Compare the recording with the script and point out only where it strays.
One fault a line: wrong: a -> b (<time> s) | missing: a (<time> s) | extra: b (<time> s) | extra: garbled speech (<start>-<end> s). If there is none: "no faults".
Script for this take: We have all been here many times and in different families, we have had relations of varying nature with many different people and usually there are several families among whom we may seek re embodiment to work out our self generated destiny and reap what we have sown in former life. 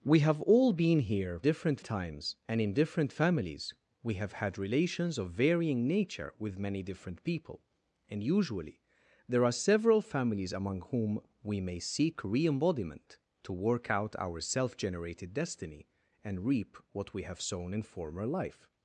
wrong: many -> different (1.4 s)